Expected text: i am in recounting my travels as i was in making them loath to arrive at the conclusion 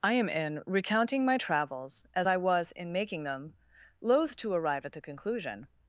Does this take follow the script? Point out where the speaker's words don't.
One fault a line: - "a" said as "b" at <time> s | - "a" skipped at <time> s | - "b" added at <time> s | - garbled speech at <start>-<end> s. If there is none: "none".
none